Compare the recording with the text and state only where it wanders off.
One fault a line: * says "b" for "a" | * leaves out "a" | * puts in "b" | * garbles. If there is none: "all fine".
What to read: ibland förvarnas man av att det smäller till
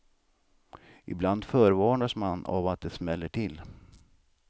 all fine